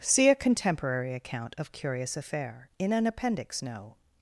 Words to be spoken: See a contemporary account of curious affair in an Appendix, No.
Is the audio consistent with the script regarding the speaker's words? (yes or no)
yes